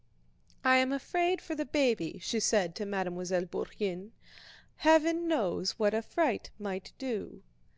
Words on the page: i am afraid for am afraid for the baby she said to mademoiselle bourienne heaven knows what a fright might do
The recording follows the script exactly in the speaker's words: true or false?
false